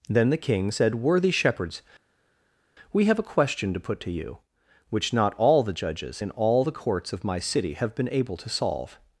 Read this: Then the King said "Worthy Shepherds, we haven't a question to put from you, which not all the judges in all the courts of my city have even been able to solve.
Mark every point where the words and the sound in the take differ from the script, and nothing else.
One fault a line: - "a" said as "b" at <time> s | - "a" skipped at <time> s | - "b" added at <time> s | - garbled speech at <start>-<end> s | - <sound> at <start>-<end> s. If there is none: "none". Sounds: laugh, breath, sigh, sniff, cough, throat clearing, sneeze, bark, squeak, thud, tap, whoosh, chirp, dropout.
- "haven't" said as "have" at 3.0 s
- "from" said as "to" at 4.0 s
- "even" skipped at 7.9 s